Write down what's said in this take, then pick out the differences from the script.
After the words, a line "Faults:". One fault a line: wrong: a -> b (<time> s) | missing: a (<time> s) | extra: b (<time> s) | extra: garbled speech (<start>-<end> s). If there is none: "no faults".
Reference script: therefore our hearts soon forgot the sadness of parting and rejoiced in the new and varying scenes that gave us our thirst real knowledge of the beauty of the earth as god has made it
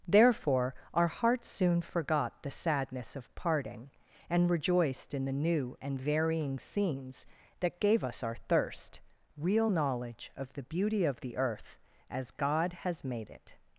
therefore our hearts soon forgot the sadness of parting and rejoiced in the new and varying scenes that gave us our thirst real knowledge of the beauty of the earth as god has made it
Faults:
no faults